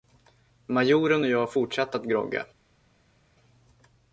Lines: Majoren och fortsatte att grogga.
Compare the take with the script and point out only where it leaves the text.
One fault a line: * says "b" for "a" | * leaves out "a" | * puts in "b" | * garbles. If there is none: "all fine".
* puts in "jag"